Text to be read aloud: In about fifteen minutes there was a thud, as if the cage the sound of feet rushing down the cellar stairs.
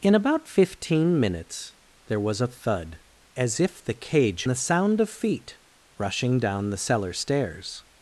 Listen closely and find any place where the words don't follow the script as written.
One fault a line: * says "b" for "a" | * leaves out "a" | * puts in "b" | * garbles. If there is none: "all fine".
all fine